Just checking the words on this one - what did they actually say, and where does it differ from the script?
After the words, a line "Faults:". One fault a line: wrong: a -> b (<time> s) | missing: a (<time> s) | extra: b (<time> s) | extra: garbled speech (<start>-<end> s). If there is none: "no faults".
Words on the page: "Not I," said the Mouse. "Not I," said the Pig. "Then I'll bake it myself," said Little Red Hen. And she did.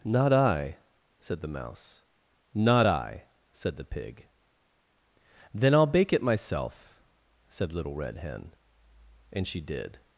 "Not I," said the Mouse. "Not I," said the Pig. "Then I'll bake it myself," said Little Red Hen. And she did.
Faults:
no faults